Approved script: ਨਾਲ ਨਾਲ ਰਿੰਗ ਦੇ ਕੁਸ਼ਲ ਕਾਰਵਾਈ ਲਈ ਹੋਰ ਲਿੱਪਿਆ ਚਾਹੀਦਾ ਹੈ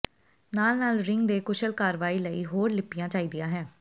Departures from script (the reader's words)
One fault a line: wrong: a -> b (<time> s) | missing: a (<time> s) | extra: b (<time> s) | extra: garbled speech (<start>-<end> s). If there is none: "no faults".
no faults